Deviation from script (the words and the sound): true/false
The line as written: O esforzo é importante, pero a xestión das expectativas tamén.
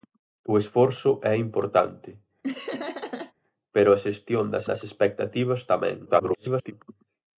true